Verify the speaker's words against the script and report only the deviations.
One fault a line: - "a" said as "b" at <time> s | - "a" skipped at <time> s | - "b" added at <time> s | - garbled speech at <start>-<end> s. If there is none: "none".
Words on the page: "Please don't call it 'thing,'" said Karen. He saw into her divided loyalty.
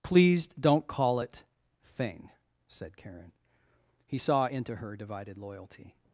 none